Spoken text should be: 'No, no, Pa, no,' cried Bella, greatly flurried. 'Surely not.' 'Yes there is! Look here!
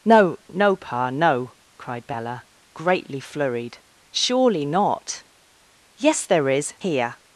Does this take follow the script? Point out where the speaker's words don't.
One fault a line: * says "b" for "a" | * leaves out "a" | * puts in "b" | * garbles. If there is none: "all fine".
* leaves out "Look"